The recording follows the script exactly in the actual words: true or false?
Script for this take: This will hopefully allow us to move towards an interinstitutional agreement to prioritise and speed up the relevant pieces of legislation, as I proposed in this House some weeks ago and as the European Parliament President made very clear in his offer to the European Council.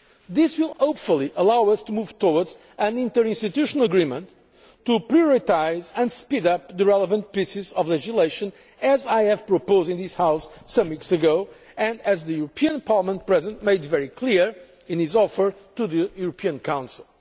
true